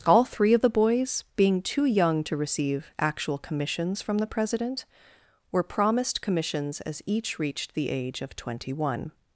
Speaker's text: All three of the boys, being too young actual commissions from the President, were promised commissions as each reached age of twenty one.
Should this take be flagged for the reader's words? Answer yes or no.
yes